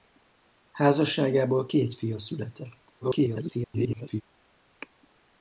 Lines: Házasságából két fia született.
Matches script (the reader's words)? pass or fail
fail